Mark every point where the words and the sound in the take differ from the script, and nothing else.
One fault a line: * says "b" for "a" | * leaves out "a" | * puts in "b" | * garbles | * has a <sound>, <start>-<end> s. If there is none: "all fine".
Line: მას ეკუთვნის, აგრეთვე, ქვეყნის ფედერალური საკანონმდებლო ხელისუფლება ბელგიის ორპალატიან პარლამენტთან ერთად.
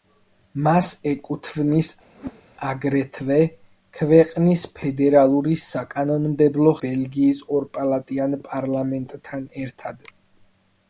* has a whoosh, 2.1-2.4 s
* leaves out "ხელისუფლება"